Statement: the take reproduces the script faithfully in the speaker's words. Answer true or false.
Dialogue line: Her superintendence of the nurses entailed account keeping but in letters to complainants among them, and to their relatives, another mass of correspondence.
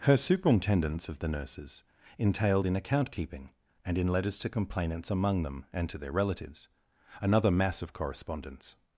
false